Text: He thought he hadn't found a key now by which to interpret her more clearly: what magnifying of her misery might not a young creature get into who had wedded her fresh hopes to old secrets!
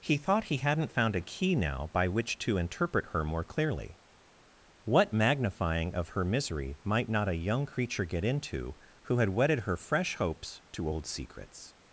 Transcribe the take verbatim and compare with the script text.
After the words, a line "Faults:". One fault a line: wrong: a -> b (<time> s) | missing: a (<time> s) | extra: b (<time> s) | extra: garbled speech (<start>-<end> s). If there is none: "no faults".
He thought he hadn't found a key now by which to interpret her more clearly: what magnifying of her misery might not a young creature get into who had wedded her fresh hopes to old secrets!
Faults:
no faults